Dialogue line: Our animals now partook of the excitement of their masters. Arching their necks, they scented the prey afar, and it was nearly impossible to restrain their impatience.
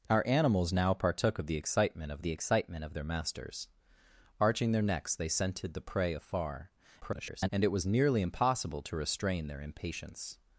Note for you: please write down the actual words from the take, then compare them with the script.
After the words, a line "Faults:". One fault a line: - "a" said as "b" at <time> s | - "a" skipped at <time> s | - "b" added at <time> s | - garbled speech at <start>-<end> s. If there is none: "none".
Our animals now partook of the excitement of the excitement of their masters. Arching their necks, they scented the prey afar, [garbled] and it was nearly impossible to restrain their impatience.
Faults:
- "the excitement of" added at 2.2 s
- garbled speech at 7.0-7.5 s